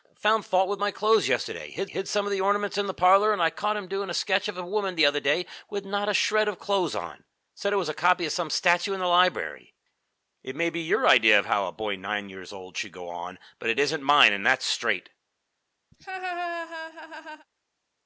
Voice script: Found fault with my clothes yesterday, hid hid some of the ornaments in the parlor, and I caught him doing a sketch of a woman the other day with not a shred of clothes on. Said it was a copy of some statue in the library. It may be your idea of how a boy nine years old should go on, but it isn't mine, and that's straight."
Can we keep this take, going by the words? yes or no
yes